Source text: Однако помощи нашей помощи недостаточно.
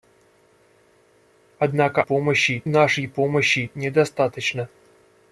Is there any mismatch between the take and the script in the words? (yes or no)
no